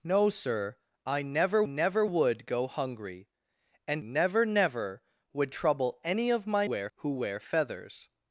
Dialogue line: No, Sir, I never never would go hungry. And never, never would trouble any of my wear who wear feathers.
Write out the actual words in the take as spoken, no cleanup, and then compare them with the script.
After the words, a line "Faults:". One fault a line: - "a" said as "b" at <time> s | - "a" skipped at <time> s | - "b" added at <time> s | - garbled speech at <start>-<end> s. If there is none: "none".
No, Sir, I never never would go hungry. And never, never would trouble any of my wear who wear feathers.
Faults:
none